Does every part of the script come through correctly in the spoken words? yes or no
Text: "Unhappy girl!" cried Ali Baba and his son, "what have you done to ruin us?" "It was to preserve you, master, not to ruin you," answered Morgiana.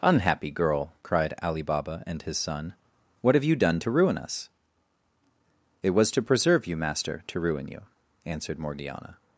no